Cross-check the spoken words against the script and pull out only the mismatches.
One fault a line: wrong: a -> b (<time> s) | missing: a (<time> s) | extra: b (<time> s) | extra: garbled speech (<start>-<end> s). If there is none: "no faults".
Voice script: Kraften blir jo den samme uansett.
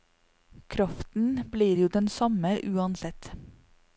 no faults